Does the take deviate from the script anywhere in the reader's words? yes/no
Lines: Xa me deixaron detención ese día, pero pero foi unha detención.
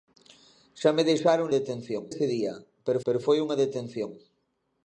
no